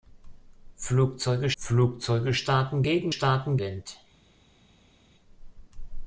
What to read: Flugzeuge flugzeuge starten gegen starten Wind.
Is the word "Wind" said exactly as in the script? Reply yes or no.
yes